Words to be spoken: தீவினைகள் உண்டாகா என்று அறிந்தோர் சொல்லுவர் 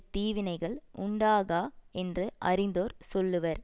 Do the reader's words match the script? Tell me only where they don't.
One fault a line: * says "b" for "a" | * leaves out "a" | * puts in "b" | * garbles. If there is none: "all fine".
all fine